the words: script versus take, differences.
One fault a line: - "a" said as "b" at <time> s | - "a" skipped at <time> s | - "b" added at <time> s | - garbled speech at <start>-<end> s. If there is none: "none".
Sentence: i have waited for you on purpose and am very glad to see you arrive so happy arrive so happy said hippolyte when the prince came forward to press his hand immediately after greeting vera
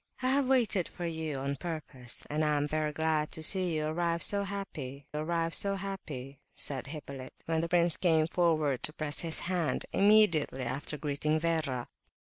none